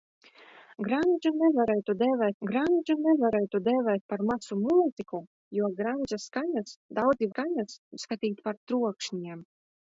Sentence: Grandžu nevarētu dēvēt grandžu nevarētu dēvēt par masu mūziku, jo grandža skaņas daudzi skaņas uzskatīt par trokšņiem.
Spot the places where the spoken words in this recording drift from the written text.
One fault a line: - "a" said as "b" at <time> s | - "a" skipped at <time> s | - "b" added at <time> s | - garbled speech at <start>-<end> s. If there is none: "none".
none